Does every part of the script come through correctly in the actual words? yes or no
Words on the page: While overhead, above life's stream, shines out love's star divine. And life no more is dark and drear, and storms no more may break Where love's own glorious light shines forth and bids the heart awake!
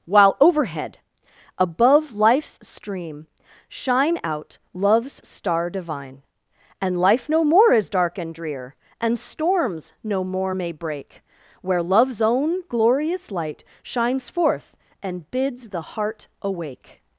no